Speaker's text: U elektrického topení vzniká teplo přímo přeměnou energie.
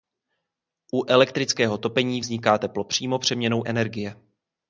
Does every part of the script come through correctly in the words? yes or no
yes